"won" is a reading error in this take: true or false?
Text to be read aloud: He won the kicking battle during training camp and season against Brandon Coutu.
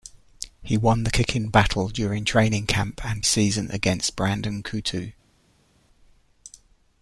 false